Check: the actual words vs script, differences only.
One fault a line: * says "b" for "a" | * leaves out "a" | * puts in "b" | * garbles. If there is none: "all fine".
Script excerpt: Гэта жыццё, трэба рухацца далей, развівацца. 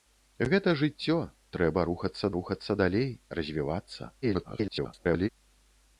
* puts in "рухацца"
* garbles